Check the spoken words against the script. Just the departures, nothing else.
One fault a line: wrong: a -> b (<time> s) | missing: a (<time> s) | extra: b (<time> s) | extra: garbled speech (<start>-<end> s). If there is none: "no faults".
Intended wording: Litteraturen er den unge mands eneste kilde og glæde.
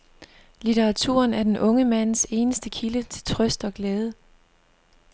extra: til trøst (3.0 s)